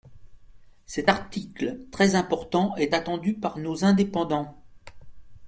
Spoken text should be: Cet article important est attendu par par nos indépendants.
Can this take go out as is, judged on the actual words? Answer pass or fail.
fail